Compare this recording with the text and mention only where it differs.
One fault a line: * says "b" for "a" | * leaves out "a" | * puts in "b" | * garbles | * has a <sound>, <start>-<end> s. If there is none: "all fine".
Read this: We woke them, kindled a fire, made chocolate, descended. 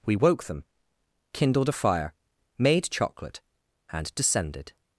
* puts in "and"